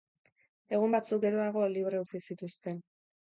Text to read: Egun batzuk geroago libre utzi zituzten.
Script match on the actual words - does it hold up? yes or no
yes